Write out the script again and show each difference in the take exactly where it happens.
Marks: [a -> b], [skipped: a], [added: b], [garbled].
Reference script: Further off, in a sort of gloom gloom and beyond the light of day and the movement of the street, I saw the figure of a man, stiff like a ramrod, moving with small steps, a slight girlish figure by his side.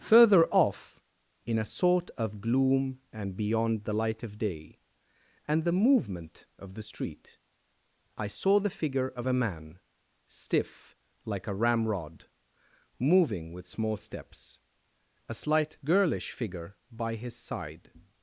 Further off, in a sort of gloom [skipped: gloom] and beyond the light of day and the movement of the street, I saw the figure of a man, stiff like a ramrod, moving with small steps, a slight girlish figure by his side.